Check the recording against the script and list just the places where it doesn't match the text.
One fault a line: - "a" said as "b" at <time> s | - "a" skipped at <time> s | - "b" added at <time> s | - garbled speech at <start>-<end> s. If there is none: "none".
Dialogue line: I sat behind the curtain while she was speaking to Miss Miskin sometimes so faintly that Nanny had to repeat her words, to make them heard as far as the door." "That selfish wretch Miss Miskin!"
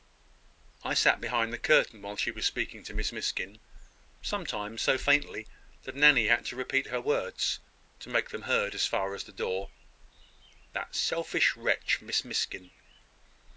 none